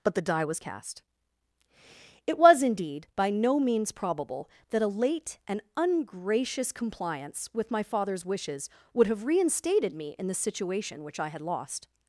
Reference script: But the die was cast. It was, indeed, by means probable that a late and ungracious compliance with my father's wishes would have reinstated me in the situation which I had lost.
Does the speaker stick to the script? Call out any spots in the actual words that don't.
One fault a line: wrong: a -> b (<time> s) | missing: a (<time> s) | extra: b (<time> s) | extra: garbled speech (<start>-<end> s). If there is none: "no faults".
extra: no (3.3 s)